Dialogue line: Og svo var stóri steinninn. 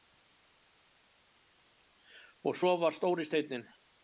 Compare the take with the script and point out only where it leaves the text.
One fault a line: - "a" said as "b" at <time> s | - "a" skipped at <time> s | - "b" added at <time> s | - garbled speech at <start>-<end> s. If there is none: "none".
none